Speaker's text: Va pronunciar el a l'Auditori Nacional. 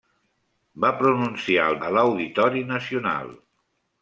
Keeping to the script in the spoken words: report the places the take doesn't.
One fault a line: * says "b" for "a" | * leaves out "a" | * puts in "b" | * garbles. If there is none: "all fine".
all fine